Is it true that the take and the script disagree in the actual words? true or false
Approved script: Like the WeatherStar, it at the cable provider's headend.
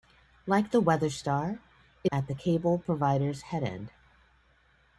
false